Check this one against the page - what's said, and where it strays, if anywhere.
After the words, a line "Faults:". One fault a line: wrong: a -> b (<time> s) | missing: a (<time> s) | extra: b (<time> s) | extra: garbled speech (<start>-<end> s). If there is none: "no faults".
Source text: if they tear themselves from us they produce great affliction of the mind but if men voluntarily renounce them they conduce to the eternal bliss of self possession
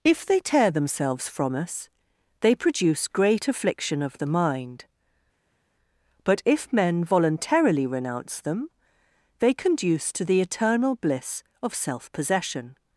if they tear themselves from us they produce great affliction of the mind but if men voluntarily renounce them they conduce to the eternal bliss of self possession
Faults:
no faults